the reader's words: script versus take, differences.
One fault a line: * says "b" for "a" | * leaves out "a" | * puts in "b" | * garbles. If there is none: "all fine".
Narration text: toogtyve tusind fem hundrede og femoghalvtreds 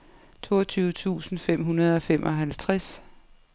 all fine